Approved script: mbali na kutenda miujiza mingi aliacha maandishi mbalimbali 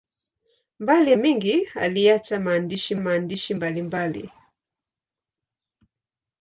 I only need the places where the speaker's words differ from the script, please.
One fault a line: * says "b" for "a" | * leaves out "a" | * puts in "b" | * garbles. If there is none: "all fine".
* leaves out "na kutenda miujiza"
* puts in "maandishi"